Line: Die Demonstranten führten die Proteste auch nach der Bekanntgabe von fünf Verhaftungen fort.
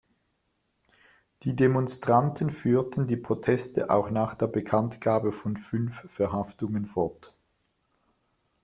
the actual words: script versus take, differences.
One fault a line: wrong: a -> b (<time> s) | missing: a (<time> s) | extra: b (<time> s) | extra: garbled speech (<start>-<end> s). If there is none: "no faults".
no faults